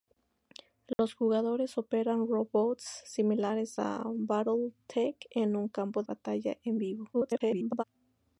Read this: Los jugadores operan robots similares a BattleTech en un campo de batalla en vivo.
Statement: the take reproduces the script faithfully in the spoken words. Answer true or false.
false